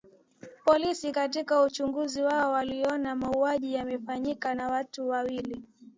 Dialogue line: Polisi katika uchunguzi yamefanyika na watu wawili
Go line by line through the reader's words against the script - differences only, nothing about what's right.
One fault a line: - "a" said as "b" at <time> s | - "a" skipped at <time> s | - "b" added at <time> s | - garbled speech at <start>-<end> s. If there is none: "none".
- "wao waliona mauaji" added at 2.2 s